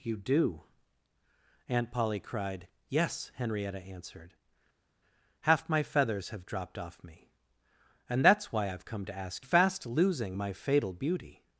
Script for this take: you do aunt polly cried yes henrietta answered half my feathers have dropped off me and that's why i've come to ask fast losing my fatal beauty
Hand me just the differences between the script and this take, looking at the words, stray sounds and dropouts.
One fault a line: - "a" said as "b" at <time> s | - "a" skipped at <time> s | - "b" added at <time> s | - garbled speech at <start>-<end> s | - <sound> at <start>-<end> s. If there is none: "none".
none